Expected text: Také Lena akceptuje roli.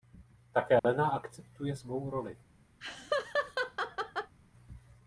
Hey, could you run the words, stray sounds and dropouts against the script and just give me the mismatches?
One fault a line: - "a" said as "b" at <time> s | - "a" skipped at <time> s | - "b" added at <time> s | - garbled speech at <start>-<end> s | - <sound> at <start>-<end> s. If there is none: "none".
- dropout at 0.8-0.8 s
- "svou" added at 1.7 s
- laugh at 2.8-4.3 s